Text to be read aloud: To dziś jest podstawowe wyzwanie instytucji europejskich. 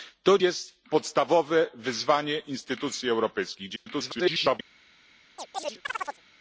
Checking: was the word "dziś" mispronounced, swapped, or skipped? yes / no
yes